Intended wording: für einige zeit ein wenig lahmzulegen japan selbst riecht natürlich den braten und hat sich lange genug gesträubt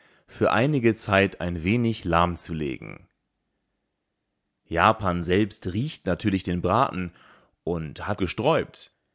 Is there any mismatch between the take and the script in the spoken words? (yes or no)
yes